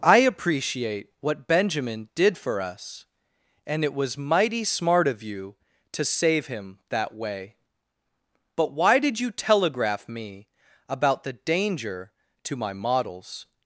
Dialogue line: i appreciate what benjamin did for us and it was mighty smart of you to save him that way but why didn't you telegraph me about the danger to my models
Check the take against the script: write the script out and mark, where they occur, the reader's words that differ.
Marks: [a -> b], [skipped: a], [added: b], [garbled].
i appreciate what benjamin did for us and it was mighty smart of you to save him that way but why [didn't -> did] you telegraph me about the danger to my models